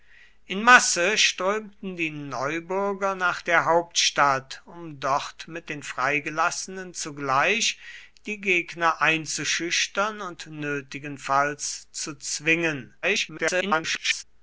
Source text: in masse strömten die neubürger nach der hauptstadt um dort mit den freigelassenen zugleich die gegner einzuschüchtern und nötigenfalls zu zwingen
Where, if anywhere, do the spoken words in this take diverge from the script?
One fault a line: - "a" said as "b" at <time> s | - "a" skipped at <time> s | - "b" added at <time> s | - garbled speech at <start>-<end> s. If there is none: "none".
- garbled speech at 13.0-14.2 s